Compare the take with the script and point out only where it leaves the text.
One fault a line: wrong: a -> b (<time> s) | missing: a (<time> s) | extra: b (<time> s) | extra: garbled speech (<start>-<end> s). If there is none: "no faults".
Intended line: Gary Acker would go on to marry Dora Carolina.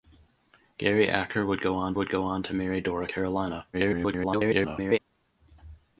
extra: would go on (1.9 s)
extra: garbled speech (3.7-5.0 s)